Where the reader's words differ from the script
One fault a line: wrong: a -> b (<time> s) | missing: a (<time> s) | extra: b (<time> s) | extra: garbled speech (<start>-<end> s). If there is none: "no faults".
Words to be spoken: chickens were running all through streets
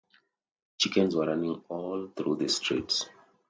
extra: the (2.4 s)